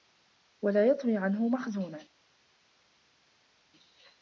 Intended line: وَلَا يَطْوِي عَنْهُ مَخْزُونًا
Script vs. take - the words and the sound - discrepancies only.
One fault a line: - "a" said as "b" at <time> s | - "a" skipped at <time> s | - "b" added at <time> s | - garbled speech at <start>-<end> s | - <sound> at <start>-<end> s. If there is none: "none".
none